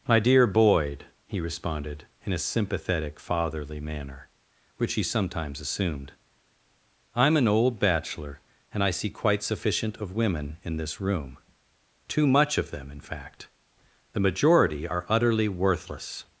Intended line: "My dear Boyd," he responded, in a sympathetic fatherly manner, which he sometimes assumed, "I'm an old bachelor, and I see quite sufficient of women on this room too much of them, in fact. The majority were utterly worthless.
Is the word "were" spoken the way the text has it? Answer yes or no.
no